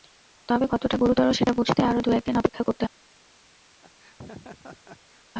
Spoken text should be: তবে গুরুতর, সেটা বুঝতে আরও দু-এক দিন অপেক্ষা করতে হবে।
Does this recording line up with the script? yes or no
no